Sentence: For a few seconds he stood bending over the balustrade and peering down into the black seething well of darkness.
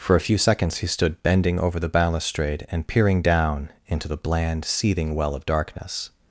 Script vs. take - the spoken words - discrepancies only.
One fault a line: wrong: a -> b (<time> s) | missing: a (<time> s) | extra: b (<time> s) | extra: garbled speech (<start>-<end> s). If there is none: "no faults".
wrong: black -> bland (4.2 s)